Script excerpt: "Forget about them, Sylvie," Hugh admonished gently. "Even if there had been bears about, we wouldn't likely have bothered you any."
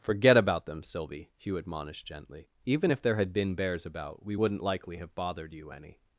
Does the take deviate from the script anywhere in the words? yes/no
no